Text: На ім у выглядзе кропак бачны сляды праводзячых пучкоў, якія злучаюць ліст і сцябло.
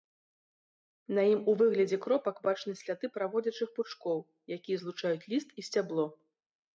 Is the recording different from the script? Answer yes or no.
no